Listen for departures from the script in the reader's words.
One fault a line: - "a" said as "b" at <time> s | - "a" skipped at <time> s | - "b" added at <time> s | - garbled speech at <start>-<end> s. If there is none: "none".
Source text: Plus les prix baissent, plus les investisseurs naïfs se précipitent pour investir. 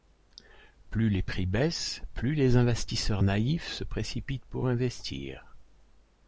none